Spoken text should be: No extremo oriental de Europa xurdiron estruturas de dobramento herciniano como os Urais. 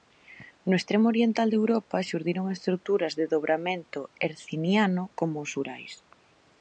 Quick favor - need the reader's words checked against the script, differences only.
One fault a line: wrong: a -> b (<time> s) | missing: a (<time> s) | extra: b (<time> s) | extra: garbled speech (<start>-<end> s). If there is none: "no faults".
no faults